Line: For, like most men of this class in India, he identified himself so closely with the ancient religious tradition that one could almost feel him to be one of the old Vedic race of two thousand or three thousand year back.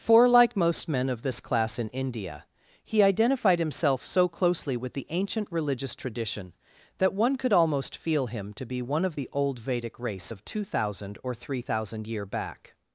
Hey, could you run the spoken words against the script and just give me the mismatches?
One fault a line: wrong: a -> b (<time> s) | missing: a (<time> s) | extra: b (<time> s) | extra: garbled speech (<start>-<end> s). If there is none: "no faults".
no faults